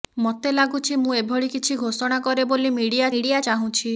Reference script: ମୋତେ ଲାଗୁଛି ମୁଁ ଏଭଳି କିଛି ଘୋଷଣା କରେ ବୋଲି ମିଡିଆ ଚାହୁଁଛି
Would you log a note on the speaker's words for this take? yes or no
yes